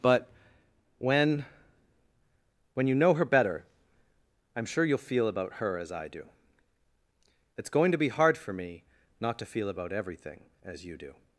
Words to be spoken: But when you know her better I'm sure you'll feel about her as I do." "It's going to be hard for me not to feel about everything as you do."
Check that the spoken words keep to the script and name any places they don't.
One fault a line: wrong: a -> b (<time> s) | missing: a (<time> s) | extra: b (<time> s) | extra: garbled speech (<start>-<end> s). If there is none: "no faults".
extra: when (2.7 s)